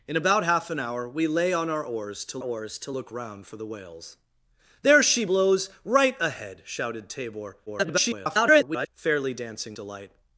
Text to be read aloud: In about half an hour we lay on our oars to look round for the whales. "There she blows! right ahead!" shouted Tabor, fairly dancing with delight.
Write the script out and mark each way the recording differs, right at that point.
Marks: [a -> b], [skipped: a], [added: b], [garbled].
In about half an hour we lay on our oars to [added: oars to] look round for the whales. "There she blows! right ahead!" shouted Tabor, [garbled] fairly dancing [skipped: with] delight.